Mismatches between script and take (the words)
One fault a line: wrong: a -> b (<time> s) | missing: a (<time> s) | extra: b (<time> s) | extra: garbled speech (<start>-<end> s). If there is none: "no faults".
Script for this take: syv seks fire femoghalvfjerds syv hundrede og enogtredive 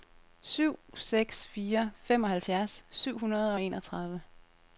no faults